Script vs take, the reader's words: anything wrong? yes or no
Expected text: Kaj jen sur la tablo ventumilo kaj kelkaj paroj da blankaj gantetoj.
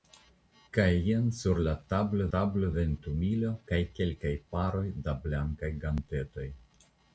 yes